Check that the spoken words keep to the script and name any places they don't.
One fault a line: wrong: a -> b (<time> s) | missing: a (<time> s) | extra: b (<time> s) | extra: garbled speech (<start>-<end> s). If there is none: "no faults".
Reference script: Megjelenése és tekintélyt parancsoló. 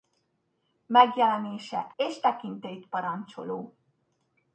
no faults